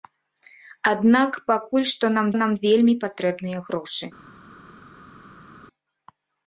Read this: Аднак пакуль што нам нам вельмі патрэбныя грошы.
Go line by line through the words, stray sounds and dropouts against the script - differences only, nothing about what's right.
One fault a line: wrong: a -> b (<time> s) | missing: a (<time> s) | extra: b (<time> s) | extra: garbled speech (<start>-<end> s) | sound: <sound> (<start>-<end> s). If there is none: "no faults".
no faults